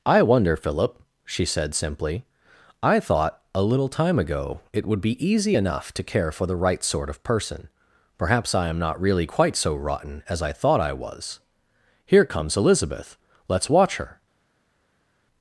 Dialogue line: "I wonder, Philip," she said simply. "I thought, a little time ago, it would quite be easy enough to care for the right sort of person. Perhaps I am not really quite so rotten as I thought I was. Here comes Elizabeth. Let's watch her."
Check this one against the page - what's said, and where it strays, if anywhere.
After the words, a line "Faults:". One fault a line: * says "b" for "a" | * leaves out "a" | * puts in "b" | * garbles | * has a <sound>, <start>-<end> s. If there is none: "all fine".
"I wonder, Philip," she said simply. "I thought, a little time ago, it would be easy enough to care for the right sort of person. Perhaps I am not really quite so rotten as I thought I was. Here comes Elizabeth. Let's watch her."
Faults:
* leaves out "quite"